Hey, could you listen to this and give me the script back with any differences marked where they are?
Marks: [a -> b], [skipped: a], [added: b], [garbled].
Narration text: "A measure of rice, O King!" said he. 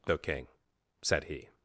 "A [skipped: measure of rice,] O King!" said he.